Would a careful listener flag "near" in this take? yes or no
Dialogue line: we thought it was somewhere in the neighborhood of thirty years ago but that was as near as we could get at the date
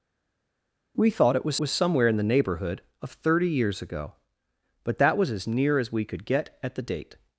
no